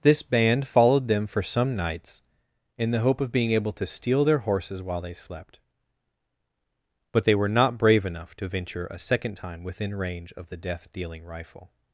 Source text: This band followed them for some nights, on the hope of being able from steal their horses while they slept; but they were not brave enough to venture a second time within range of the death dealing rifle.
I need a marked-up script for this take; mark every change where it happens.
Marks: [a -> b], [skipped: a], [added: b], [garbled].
This band followed them for some nights, [on -> in] the hope of being able [from -> to] steal their horses while they slept; but they were not brave enough to venture a second time within range of the death dealing rifle.